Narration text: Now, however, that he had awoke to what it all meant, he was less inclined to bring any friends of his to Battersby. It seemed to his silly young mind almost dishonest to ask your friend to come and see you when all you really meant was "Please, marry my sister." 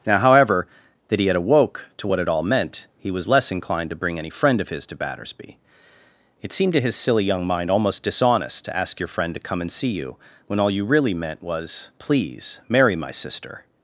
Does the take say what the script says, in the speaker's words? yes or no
no